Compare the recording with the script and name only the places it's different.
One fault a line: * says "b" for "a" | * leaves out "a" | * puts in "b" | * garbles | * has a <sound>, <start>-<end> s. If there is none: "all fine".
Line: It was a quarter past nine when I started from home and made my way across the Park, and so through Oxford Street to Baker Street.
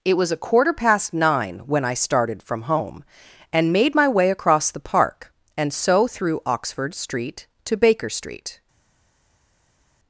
all fine